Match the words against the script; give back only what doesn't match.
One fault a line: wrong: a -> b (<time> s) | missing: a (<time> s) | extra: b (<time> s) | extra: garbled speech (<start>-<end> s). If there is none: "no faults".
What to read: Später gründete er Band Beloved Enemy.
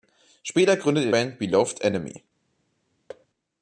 no faults